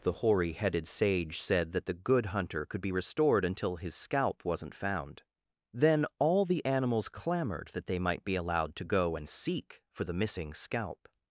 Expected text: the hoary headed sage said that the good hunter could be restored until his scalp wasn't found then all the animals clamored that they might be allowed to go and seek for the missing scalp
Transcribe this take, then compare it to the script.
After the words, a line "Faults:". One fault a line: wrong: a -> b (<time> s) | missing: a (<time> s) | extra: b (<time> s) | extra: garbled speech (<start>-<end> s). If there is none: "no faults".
the hoary headed sage said that the good hunter could be restored until his scalp wasn't found then all the animals clamored that they might be allowed to go and seek for the missing scalp
Faults:
no faults